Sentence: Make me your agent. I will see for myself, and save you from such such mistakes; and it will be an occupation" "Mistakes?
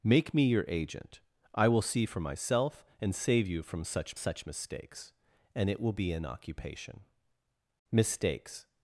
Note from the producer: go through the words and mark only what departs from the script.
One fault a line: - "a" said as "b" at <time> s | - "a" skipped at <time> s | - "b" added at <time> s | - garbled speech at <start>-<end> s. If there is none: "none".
none